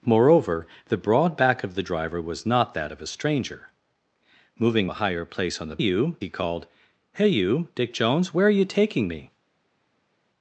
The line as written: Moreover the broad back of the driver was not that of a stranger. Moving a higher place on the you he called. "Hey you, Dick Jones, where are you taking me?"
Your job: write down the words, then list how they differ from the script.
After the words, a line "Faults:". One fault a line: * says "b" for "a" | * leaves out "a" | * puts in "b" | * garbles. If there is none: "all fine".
Moreover the broad back of the driver was not that of a stranger. Moving a higher place on the you he called. "Hey you, Dick Jones, where are you taking me?"
Faults:
all fine